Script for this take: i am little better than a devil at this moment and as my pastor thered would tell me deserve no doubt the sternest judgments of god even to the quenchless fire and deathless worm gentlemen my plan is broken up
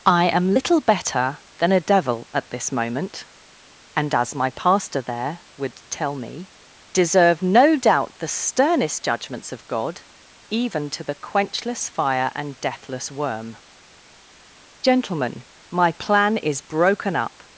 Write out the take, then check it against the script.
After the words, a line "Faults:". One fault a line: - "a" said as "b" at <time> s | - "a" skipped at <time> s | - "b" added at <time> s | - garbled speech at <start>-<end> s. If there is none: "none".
i am little better than a devil at this moment and as my pastor there would tell me deserve no doubt the sternest judgments of god even to the quenchless fire and deathless worm gentlemen my plan is broken up
Faults:
- "thered" said as "there" at 5.0 s